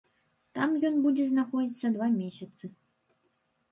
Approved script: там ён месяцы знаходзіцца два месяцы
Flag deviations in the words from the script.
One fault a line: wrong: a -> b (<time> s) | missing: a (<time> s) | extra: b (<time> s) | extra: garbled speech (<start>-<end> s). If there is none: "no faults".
wrong: месяцы -> будзе (1.1 s)